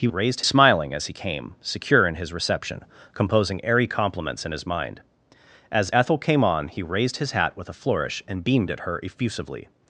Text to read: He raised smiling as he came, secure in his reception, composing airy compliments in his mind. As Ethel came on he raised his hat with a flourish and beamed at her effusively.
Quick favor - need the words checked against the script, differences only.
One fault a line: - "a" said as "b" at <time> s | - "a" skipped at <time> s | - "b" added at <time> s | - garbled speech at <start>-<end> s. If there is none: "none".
none